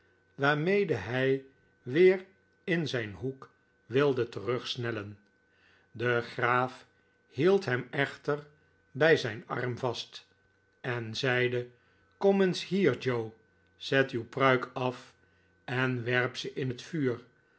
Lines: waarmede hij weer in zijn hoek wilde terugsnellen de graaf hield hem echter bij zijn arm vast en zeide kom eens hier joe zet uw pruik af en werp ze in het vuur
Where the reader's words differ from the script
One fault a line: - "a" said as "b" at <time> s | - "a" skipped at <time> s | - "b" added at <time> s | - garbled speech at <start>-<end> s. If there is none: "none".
none